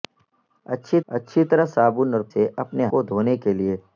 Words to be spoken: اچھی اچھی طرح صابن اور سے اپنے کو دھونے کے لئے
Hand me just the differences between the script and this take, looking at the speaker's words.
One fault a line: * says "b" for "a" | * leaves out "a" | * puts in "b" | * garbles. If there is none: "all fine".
all fine